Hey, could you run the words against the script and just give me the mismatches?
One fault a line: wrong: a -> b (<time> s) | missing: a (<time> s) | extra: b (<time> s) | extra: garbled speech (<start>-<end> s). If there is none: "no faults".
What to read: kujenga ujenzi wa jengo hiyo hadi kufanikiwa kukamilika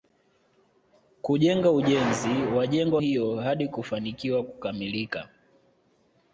no faults